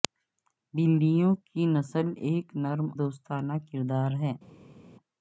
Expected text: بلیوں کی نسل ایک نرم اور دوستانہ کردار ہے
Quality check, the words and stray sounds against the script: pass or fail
fail